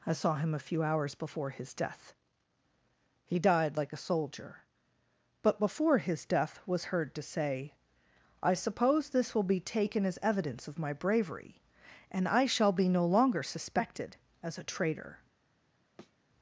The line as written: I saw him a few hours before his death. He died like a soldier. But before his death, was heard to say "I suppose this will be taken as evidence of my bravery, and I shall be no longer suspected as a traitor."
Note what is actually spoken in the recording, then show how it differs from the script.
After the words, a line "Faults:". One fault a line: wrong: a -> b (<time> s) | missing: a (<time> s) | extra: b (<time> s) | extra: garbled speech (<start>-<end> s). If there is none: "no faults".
I saw him a few hours before his death. He died like a soldier. But before his death, was heard to say "I suppose this will be taken as evidence of my bravery, and I shall be no longer suspected as a traitor."
Faults:
no faults